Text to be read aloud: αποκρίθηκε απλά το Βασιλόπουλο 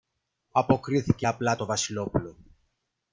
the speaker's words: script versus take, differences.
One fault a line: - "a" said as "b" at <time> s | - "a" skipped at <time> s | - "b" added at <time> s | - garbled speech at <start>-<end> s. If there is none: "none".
none